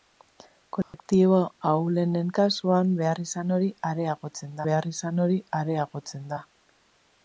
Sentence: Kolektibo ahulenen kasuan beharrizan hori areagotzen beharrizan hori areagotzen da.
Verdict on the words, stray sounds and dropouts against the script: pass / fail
fail